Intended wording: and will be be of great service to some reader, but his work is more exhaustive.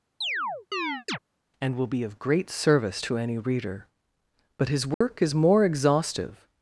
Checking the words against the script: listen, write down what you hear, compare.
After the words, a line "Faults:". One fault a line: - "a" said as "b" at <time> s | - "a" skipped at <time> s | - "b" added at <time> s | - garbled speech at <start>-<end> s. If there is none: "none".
and will be of great service to any reader, but his work is more exhaustive.
Faults:
- "be" skipped at 2.0 s
- "some" said as "any" at 3.2 s